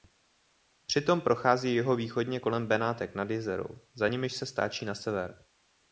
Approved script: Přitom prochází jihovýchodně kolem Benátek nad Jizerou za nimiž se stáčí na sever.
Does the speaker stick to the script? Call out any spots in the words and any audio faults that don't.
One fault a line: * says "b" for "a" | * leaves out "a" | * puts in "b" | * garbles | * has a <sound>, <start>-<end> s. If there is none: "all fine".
all fine